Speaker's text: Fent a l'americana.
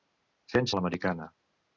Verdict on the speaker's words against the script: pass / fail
pass